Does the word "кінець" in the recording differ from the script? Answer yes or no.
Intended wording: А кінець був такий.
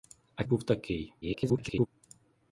yes